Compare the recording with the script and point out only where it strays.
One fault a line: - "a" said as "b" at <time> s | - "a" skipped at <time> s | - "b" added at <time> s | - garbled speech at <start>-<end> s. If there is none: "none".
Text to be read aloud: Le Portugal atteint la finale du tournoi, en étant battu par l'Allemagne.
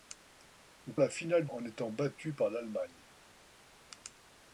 - "Portugal atteint" skipped at 0.9 s
- "du tournoi" skipped at 1.5 s